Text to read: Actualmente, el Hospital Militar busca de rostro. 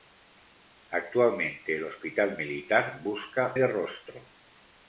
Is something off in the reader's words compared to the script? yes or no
no